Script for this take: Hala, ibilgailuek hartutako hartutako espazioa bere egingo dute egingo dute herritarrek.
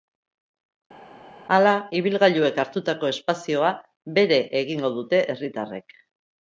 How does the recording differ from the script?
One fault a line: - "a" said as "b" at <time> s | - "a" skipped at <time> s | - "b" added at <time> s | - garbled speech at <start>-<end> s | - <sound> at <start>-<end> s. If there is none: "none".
- "hartutako" skipped at 3.1 s
- "egingo dute" skipped at 5.2 s